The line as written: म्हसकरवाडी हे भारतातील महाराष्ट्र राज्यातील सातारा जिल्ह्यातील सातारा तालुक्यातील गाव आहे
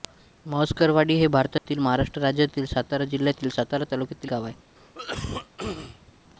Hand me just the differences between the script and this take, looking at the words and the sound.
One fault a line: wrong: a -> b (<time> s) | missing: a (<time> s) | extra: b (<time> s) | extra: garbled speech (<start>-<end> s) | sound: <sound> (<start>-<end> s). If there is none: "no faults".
sound: dropout (1.6-1.7 s)
sound: cough (4.8-6.1 s)